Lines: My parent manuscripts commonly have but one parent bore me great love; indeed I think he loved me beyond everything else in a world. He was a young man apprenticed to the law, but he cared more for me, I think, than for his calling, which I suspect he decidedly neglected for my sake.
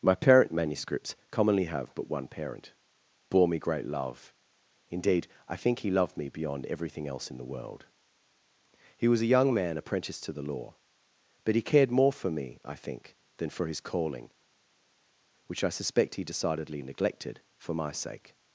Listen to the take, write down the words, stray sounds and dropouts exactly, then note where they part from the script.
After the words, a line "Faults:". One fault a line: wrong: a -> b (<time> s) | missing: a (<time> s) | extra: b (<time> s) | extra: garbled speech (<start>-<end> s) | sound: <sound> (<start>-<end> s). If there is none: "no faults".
My parent manuscripts commonly have but one parent bore me great love; indeed I think he loved me beyond everything else in the world. He was a young man apprenticed to the law, but he cared more for me, I think, than for his calling, which I suspect he decidedly neglected for my sake.
Faults:
wrong: a -> the (7.4 s)